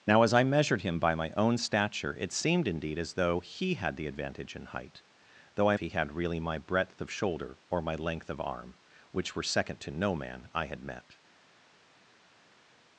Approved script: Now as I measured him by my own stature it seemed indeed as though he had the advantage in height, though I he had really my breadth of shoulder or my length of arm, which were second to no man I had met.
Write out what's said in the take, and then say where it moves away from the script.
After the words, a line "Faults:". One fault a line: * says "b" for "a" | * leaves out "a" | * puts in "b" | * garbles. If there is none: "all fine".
Now as I measured him by my own stature it seemed indeed as though he had the advantage in height, though I he had really my breadth of shoulder or my length of arm, which were second to no man I had met.
Faults:
all fine